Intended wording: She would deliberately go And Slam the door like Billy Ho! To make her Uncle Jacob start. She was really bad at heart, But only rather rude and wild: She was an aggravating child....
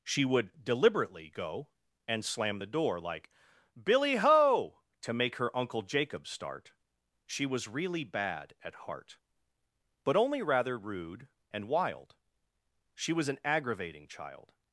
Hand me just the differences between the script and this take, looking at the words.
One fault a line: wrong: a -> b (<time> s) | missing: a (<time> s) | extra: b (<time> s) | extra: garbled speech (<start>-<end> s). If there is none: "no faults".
no faults